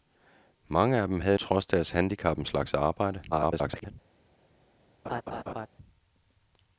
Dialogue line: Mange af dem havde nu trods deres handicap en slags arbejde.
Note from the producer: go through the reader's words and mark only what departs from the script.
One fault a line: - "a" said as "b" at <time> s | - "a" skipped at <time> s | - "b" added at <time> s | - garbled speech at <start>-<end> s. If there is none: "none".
- "nu" skipped at 1.4 s
- garbled speech at 3.3-3.9 s